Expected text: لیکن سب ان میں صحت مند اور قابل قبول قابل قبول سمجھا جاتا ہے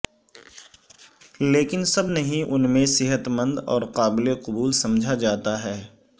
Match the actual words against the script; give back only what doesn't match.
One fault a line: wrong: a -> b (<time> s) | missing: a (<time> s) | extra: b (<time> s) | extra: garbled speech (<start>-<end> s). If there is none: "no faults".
extra: نہیں (2.1 s)
missing: قابل قبول (4.7 s)